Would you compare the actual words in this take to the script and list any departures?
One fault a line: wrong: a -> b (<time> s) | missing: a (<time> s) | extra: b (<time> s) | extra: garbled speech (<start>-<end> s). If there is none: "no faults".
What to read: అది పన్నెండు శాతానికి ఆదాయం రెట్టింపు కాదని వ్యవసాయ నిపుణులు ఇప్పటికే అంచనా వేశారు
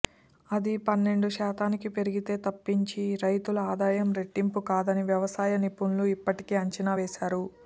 extra: పెరిగితే తప్పించి రైతుల (2.0 s)